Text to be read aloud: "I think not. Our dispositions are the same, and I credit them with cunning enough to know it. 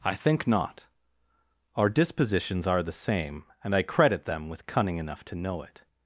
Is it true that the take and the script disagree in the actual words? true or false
false